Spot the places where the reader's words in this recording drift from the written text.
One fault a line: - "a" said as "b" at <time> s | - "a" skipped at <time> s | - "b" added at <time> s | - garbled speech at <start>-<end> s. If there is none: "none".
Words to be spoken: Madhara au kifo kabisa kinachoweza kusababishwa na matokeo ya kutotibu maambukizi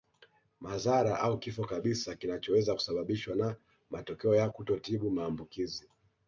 none